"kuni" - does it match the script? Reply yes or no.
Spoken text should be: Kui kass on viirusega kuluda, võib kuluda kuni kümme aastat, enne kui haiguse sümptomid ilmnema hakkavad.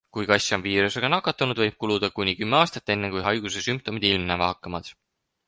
yes